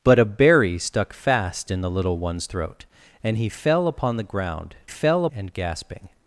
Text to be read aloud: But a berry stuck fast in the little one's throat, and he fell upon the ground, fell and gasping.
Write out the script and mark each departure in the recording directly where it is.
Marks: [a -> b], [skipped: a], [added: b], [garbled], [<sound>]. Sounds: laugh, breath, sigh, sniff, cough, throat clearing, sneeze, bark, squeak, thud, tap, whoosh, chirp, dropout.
But a berry stuck fast in the little one's throat, and he fell upon the ground, fell and gasping.